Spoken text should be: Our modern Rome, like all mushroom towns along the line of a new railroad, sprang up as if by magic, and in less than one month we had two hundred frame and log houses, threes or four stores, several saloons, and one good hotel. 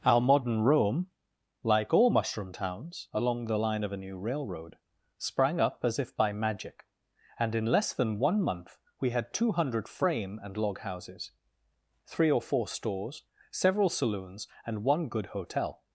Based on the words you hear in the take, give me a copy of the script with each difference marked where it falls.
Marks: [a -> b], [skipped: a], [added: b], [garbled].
Our modern Rome, like all mushroom towns along the line of a new railroad, sprang up as if by magic, and in less than one month we had two hundred frame and log houses, [threes -> three] or four stores, several saloons, and one good hotel.